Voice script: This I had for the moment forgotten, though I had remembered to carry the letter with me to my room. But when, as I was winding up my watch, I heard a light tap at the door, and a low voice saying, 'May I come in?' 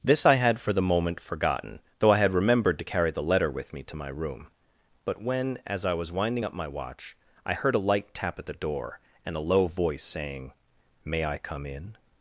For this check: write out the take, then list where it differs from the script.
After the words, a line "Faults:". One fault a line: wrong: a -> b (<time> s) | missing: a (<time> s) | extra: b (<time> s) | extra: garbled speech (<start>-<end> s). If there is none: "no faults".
This I had for the moment forgotten, though I had remembered to carry the letter with me to my room. But when, as I was winding up my watch, I heard a light tap at the door, and a low voice saying, 'May I come in?'
Faults:
no faults